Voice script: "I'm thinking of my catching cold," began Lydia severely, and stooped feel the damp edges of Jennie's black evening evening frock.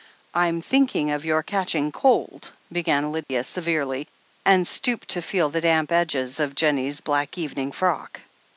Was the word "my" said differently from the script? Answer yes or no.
yes